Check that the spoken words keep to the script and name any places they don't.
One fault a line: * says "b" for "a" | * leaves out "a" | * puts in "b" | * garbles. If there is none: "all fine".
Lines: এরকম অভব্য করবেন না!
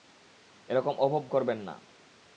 all fine